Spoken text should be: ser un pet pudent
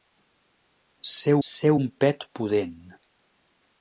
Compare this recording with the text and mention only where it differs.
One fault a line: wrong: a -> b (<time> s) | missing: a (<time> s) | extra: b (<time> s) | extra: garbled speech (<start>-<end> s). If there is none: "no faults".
extra: ser (1.5 s)